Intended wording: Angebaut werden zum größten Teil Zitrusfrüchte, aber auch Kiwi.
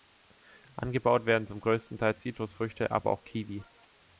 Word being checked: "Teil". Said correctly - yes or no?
yes